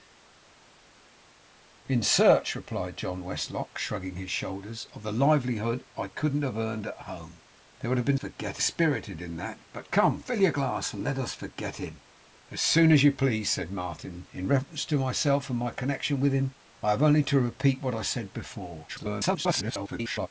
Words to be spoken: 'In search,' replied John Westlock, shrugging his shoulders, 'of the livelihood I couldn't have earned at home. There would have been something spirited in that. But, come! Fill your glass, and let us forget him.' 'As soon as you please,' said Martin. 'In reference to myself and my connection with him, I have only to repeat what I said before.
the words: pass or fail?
fail